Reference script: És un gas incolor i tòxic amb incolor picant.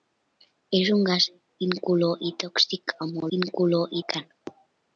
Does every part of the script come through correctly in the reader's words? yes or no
yes